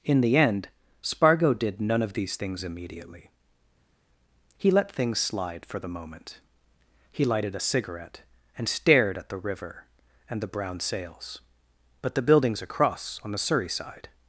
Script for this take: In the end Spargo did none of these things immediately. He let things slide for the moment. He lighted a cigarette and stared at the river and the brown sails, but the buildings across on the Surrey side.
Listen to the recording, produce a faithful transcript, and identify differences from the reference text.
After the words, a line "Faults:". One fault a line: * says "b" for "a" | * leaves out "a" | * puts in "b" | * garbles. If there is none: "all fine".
In the end Spargo did none of these things immediately. He let things slide for the moment. He lighted a cigarette and stared at the river and the brown sails, but the buildings across on the Surrey side.
Faults:
all fine